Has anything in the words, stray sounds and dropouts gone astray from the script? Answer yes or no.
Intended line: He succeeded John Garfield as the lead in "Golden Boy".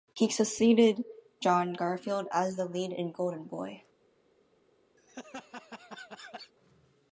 yes